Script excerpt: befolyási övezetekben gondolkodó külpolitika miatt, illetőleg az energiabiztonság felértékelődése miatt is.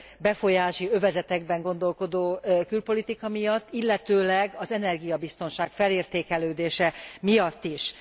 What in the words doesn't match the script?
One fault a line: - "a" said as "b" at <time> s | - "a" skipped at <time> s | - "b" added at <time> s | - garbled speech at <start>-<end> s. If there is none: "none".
none